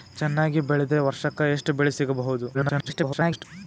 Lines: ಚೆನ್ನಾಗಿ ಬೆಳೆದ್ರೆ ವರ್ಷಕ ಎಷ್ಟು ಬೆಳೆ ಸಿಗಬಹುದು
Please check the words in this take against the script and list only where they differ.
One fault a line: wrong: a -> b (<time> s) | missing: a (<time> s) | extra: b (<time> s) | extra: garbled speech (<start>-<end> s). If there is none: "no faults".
extra: garbled speech (2.5-3.4 s)